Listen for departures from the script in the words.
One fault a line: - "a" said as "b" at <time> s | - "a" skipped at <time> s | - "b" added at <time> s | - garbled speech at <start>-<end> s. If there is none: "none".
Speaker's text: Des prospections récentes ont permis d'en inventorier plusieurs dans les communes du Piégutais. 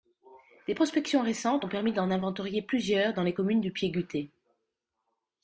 none